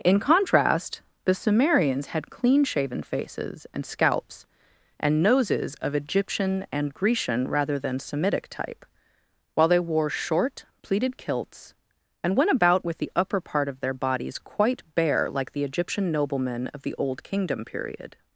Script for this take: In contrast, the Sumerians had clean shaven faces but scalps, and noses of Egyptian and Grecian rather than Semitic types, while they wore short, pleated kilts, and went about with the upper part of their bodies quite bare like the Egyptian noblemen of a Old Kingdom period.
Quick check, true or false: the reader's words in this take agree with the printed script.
false